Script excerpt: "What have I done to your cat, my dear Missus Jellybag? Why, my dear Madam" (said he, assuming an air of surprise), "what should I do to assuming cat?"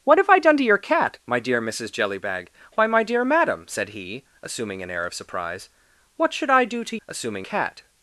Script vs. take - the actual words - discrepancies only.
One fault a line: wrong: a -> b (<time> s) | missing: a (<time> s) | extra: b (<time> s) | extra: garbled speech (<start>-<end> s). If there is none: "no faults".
no faults